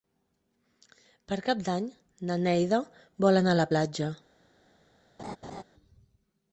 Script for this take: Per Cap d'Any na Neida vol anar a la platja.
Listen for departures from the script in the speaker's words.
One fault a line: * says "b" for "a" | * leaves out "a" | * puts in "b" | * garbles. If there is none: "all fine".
all fine